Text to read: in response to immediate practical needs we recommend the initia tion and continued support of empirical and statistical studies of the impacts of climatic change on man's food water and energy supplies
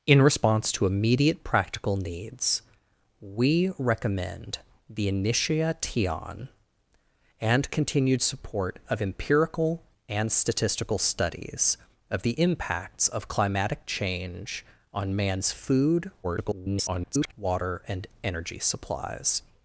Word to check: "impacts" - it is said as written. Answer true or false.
true